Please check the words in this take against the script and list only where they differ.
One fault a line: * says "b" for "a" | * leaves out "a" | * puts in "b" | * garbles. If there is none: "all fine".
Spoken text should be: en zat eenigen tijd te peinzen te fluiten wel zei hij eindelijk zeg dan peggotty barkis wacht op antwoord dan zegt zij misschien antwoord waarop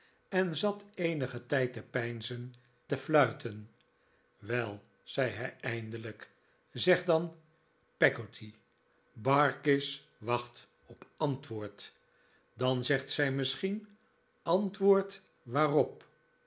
all fine